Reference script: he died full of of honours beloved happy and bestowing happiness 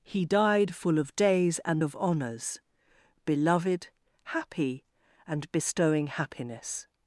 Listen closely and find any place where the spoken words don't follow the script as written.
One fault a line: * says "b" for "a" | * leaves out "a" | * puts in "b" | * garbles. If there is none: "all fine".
* puts in "days and"